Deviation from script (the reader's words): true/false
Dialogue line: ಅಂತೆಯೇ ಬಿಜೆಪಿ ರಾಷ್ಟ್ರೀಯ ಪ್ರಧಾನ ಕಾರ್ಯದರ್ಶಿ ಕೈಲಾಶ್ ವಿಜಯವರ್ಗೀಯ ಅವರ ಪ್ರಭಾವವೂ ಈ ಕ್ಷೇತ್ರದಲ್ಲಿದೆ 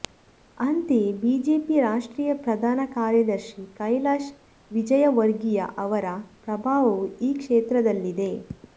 false